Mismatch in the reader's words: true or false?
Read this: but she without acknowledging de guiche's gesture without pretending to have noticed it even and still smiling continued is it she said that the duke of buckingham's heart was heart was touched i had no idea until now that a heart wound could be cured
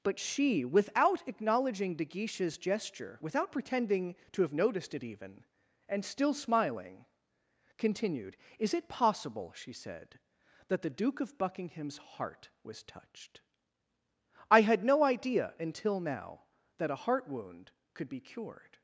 true